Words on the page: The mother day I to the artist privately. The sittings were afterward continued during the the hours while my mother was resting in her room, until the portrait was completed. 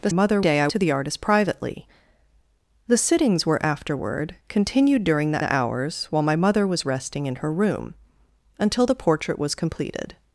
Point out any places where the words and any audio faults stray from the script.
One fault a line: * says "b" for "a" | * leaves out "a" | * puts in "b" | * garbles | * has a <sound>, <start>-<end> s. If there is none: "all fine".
all fine